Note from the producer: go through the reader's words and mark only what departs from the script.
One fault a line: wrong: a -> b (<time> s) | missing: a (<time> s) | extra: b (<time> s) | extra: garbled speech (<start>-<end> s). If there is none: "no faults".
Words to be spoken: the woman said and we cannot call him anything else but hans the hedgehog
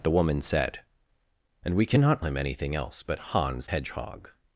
missing: call (2.2 s)
missing: the (3.7 s)